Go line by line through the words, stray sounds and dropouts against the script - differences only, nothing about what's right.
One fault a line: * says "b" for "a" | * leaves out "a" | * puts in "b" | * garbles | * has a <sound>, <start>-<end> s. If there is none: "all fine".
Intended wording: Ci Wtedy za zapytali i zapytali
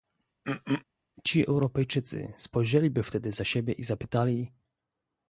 * has a throat clearing, 0.4-0.8 s
* puts in "Europejczycy spojrzeliby"
* says "siebie" for "zapytali"